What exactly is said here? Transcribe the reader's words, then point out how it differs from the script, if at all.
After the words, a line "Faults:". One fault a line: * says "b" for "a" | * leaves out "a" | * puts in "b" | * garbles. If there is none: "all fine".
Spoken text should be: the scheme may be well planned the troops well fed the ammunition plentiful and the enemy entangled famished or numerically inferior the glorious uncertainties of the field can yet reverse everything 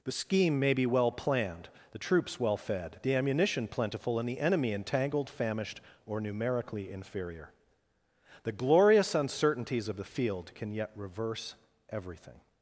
the scheme may be well planned the troops well fed the ammunition plentiful and the enemy entangled famished or numerically inferior the glorious uncertainties of the field can yet reverse everything
Faults:
all fine